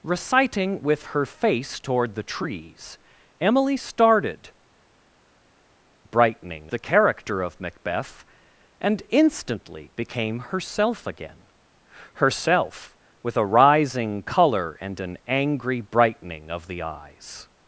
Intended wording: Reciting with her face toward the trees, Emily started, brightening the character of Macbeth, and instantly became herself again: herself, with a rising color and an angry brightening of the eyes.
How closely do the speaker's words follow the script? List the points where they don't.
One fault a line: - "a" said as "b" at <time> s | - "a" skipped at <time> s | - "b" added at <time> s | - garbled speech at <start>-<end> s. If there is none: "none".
none